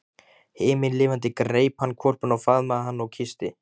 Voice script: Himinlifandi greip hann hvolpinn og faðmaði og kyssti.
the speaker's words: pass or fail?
fail